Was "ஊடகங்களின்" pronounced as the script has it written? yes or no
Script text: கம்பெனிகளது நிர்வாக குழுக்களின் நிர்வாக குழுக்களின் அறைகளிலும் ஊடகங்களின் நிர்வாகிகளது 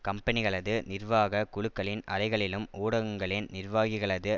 yes